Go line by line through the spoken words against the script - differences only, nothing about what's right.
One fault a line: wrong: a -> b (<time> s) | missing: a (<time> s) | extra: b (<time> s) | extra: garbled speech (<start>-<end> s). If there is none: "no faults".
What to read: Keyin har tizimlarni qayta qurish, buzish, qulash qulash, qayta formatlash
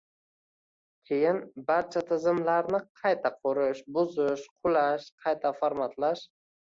wrong: har -> barcha (1.7 s)
missing: qulash (5.1 s)